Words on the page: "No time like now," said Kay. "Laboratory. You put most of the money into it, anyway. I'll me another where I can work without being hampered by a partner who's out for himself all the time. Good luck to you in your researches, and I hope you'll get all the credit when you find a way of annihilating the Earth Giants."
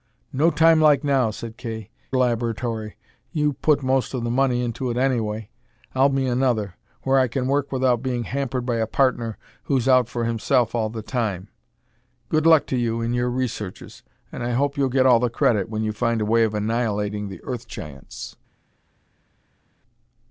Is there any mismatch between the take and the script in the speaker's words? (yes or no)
no